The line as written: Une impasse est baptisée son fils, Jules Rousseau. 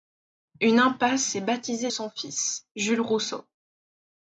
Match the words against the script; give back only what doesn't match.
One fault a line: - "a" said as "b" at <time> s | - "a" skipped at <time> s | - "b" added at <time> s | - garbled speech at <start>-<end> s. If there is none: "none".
none